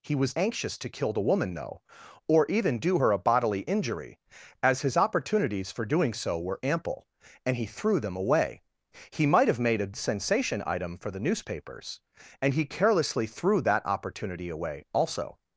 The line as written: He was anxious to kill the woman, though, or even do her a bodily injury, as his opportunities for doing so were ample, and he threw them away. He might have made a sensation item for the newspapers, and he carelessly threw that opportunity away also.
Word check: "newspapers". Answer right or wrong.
right